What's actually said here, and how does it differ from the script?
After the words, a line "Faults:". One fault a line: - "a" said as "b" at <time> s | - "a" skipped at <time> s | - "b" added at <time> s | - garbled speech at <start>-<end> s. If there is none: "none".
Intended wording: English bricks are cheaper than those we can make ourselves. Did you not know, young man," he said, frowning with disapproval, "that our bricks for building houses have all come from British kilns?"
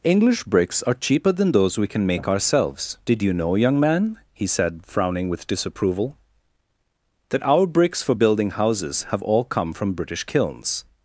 English bricks are cheaper than those we can make ourselves. Did you know, young man," he said, frowning with disapproval, "that our bricks for building houses have all come from British kilns?"
Faults:
- "not" skipped at 3.3 s